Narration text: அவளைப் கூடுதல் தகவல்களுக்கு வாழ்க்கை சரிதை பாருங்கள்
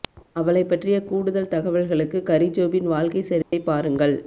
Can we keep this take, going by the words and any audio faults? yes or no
no